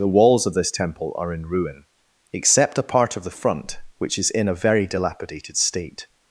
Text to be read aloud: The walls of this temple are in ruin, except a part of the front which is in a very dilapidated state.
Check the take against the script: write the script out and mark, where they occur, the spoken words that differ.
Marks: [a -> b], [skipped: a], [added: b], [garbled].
The walls of this temple are in ruin, except a part of the front which is in a very dilapidated state.